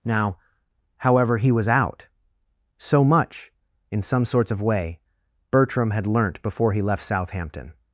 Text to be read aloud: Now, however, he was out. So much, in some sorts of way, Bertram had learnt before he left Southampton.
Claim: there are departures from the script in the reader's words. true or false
false